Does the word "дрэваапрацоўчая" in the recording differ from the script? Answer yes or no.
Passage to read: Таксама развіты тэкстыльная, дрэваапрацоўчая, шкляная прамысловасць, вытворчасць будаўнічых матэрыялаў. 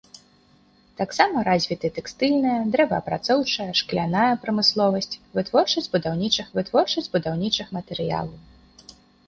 no